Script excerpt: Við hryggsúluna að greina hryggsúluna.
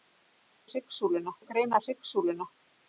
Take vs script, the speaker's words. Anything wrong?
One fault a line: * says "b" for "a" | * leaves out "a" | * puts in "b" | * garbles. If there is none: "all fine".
all fine